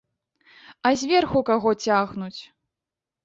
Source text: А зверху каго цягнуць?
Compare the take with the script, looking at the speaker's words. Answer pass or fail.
pass